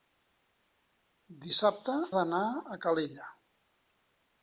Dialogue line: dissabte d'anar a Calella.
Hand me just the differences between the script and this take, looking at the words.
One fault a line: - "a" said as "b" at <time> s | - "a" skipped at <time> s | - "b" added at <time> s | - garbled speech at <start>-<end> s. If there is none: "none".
none